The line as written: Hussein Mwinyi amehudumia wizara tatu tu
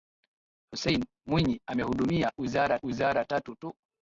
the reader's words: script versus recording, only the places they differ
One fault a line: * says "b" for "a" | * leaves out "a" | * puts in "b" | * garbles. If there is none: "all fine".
* puts in "wizara"